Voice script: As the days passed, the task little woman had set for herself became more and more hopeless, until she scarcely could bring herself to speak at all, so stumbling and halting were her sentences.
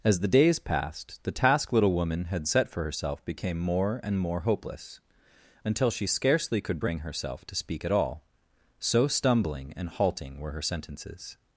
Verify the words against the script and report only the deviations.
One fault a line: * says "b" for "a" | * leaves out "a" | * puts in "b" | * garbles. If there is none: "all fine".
all fine